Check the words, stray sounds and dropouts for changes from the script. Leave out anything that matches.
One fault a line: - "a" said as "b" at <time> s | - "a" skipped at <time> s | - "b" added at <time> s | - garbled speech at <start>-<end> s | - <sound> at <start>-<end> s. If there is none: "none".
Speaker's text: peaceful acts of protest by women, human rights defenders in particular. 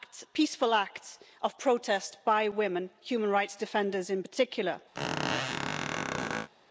- squeak at 4.9-6.5 s